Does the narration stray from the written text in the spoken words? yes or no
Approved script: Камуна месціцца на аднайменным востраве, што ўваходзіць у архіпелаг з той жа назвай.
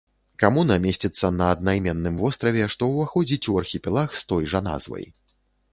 no